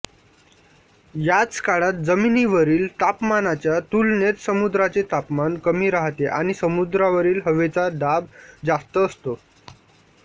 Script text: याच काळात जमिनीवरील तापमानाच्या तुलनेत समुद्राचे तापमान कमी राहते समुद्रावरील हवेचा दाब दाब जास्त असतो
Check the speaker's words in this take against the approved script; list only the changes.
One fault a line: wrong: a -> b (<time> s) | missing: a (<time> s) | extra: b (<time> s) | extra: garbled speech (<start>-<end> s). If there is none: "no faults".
extra: आणि (6.3 s)
missing: दाब (8.2 s)